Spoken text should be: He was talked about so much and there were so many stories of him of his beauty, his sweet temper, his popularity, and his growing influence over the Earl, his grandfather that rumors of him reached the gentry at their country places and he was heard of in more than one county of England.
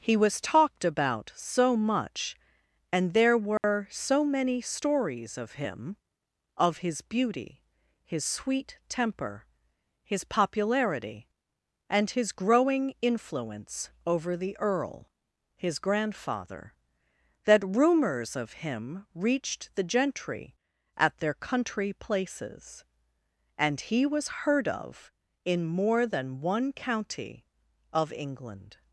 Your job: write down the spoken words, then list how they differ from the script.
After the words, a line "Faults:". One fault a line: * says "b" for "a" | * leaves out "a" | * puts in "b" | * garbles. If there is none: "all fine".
He was talked about so much and there were so many stories of him of his beauty, his sweet temper, his popularity, and his growing influence over the Earl, his grandfather that rumors of him reached the gentry at their country places and he was heard of in more than one county of England.
Faults:
all fine